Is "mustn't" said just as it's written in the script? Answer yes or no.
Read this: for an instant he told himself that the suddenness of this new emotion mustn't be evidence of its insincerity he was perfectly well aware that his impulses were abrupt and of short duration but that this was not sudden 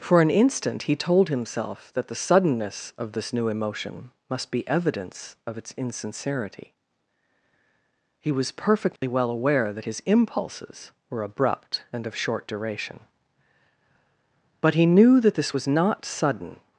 no